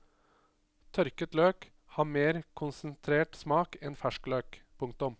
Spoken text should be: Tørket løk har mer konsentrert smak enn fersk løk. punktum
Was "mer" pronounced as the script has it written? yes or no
yes